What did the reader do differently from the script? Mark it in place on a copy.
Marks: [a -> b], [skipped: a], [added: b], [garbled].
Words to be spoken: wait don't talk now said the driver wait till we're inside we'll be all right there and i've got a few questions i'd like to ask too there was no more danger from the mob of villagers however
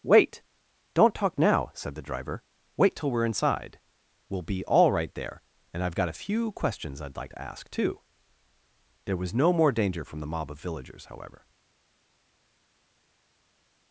wait don't talk now said the driver wait till we're inside we'll be all right there and i've got a few questions i'd like to ask too there was no more danger from the mob of villagers however